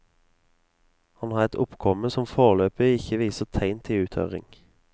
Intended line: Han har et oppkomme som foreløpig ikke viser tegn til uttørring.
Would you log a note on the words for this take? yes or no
no